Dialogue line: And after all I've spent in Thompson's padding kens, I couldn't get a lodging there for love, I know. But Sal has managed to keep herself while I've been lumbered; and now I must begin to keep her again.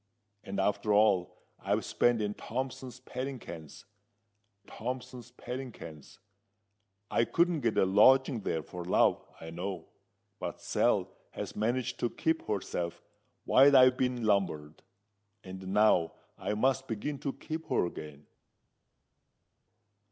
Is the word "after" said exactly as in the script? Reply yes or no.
yes